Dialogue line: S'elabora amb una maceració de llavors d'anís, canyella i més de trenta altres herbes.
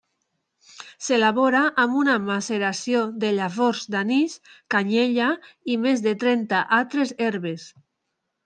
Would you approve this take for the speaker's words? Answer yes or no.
yes